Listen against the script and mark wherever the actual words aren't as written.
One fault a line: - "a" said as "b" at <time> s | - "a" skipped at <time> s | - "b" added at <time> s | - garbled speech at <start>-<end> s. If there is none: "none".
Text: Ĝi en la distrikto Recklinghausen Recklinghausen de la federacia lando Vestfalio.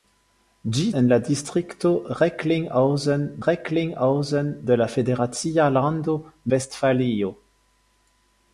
none